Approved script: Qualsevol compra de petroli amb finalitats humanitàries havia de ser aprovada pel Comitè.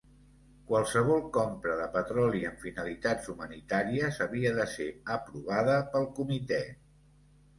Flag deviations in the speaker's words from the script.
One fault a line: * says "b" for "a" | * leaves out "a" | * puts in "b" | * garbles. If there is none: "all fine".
all fine